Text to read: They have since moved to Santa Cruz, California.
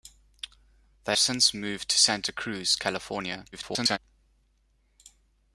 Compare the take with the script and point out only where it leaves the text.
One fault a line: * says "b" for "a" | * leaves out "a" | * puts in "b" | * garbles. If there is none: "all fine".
* leaves out "have"
* garbles